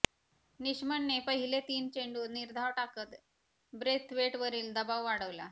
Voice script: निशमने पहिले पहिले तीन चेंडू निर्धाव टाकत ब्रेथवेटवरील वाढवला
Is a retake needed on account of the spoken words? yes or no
yes